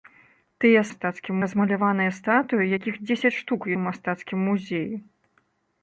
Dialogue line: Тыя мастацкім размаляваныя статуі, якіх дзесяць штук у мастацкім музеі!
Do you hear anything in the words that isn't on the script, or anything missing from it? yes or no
no